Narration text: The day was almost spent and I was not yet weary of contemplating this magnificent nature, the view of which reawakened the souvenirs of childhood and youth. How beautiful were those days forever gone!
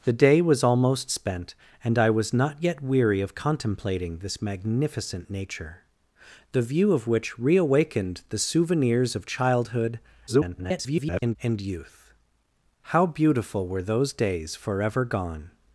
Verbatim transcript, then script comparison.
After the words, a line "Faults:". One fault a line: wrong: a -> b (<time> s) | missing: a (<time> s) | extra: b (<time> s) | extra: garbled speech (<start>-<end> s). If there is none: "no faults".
The day was almost spent and I was not yet weary of contemplating this magnificent nature, the view of which reawakened the souvenirs of childhood [garbled] and youth. How beautiful were those days forever gone!
Faults:
extra: garbled speech (10.3-11.4 s)